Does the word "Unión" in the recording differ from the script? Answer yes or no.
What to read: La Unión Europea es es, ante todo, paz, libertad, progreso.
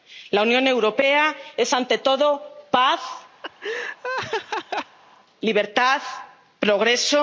no